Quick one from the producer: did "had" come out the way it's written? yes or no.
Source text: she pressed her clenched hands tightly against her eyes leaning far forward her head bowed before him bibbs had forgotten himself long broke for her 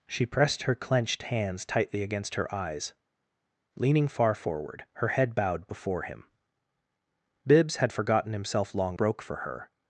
yes